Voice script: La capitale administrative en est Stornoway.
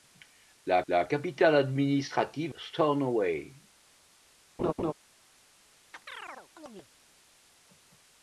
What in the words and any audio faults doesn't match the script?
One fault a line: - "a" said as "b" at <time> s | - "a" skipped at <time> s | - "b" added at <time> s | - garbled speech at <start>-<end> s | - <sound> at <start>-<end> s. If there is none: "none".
- "la" added at 0.9 s
- "en est" skipped at 2.5 s
- laugh at 4.6-4.9 s
- chirp at 5.9-6.9 s